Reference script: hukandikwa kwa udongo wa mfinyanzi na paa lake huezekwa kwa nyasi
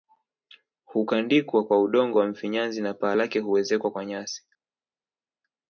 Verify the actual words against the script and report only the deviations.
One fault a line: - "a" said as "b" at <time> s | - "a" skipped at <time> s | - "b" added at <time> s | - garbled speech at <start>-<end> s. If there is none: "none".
none